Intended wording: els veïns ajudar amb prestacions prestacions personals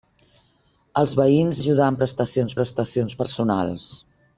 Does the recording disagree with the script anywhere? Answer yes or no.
no